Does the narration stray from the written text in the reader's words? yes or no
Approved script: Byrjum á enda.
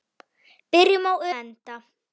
no